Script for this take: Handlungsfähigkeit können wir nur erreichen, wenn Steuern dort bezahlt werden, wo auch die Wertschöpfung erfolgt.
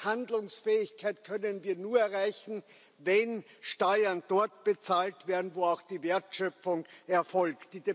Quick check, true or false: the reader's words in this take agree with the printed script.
true